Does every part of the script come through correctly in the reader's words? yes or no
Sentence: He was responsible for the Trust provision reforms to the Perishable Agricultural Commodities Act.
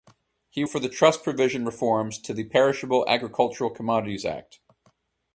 no